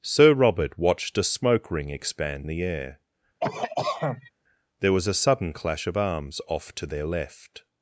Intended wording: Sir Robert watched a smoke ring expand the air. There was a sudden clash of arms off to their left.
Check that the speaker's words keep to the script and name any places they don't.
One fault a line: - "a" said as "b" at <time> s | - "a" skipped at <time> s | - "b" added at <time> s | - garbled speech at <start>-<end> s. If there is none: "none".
none